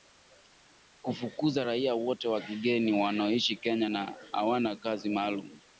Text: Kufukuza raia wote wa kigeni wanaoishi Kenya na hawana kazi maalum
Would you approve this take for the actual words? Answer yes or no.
yes